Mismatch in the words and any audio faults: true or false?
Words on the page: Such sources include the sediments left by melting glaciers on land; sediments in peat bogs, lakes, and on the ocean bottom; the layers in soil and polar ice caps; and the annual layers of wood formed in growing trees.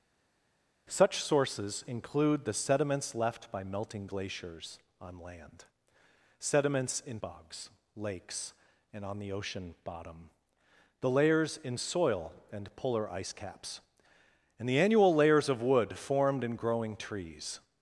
true